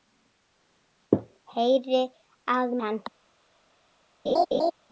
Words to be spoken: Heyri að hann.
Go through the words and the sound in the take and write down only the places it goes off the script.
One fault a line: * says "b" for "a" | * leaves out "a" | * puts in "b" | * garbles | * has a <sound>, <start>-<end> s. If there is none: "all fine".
* has a laugh, 4.3-4.7 s